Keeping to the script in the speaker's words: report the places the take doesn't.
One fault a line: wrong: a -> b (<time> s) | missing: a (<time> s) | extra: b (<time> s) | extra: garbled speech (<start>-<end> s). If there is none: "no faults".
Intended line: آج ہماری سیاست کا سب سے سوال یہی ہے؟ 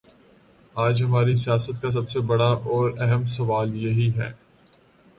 extra: بڑا اور اہم (2.3 s)